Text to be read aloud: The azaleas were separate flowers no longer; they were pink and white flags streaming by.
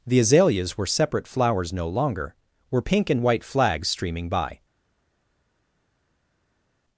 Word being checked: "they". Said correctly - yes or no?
no